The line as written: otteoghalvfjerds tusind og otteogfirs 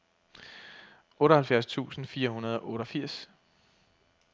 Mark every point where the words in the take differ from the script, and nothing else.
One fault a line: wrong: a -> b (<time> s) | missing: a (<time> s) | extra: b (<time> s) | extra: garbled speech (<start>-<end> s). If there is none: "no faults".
extra: fire hundrede (2.0 s)